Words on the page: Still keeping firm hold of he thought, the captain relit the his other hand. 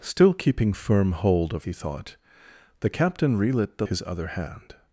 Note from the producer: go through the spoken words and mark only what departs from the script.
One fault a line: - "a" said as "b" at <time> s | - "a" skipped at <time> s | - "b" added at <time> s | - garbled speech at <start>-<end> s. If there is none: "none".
none